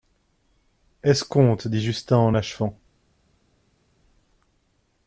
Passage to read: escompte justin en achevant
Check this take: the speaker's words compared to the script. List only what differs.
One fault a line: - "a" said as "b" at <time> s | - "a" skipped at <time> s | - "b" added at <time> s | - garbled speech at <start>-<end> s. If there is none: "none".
- "dit" added at 1.7 s